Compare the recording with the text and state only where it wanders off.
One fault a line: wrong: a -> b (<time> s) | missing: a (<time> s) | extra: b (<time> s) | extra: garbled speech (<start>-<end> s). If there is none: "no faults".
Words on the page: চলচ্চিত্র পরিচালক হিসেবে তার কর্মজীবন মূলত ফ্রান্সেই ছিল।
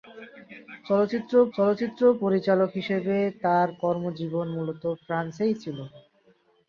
extra: চলচ্চিত্র (1.5 s)